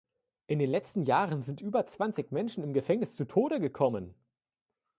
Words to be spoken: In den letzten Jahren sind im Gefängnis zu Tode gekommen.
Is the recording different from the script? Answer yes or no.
yes